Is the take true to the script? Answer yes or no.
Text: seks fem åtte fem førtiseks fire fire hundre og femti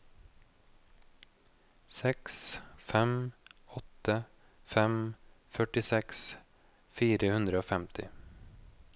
no